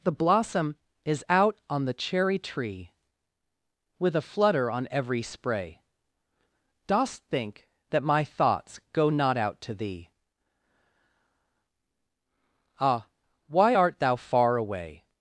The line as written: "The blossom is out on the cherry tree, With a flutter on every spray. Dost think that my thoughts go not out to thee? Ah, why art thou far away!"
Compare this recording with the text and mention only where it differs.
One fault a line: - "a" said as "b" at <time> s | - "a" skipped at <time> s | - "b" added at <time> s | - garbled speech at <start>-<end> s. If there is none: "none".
none